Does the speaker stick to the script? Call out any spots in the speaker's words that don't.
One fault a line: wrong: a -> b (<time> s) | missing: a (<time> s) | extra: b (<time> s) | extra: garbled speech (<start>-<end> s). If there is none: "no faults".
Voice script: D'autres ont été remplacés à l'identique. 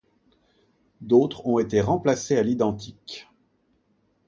no faults